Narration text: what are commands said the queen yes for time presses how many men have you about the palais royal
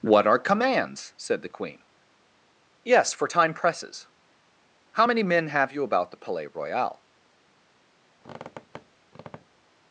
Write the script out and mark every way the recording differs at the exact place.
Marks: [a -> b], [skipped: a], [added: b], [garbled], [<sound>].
what are commands said the queen yes for time presses how many men have you about the palais royal [squeak]